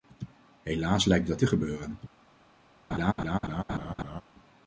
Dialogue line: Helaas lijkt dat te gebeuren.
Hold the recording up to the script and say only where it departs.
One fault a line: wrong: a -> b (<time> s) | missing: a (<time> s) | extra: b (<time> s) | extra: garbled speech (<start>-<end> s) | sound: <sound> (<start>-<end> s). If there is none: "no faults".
sound: laugh (2.9-4.2 s)